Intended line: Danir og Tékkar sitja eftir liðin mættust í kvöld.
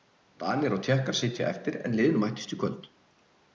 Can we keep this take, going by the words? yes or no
no